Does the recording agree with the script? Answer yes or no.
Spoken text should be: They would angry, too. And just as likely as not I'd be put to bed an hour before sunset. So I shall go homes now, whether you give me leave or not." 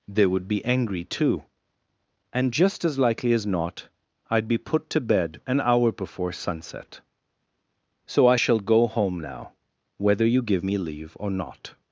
no